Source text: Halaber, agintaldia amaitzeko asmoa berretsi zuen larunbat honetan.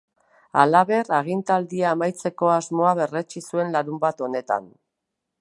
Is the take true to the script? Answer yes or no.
yes